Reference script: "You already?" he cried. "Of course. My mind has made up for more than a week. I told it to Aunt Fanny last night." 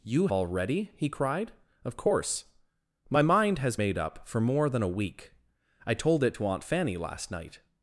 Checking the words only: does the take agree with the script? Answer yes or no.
yes